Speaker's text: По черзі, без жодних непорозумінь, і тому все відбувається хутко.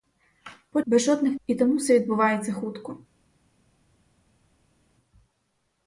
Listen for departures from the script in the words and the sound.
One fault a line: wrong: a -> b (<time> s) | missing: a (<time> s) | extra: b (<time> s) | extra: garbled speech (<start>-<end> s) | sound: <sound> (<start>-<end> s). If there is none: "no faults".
missing: черзі (0.8 s)
missing: непорозумінь (1.4 s)